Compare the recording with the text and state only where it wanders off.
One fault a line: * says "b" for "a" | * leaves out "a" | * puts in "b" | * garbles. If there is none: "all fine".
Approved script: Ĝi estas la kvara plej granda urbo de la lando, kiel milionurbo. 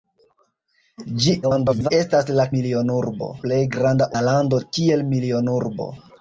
* garbles
* says "milionurbo" for "kvara"
* leaves out "urbo de"